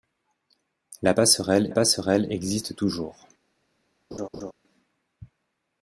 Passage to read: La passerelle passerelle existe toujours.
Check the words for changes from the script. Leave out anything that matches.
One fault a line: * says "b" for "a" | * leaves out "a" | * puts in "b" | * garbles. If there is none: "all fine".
all fine